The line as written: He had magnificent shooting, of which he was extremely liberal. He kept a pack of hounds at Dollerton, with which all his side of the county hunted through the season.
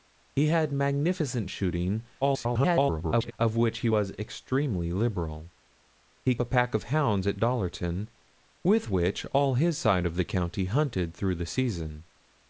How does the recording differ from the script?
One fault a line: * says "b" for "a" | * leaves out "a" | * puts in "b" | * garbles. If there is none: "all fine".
* garbles
* leaves out "kept"